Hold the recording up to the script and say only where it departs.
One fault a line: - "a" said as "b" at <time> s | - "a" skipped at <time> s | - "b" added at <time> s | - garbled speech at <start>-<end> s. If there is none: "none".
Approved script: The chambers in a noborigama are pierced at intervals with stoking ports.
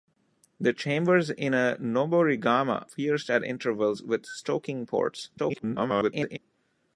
- "are" skipped at 2.9 s
- garbled speech at 5.4-6.4 s